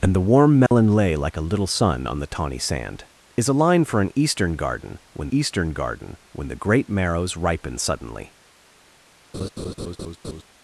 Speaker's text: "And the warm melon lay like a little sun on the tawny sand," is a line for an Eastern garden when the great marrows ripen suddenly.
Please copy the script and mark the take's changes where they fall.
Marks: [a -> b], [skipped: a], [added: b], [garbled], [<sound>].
"And the warm melon [dropout] lay like a little sun on the tawny sand," is a line for an Eastern garden when [added: Eastern garden when] the great marrows ripen suddenly. [laugh]